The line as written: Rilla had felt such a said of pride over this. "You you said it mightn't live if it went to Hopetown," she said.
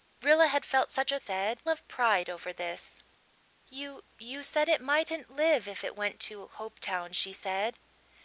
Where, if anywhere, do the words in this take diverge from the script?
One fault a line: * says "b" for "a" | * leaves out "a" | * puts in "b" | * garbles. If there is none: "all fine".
all fine